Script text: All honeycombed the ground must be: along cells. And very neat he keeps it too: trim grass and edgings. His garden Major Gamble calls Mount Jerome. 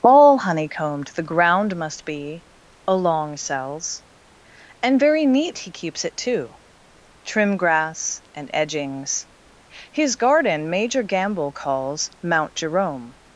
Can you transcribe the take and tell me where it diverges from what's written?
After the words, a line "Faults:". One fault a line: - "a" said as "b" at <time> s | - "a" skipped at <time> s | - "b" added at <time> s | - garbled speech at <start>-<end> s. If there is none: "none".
All honeycombed the ground must be: along cells. And very neat he keeps it too: trim grass and edgings. His garden Major Gamble calls Mount Jerome.
Faults:
none